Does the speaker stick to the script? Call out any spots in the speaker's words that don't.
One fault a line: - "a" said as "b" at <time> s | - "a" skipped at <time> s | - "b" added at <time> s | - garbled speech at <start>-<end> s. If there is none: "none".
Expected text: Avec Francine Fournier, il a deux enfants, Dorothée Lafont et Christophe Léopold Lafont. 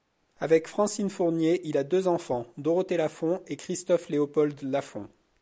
none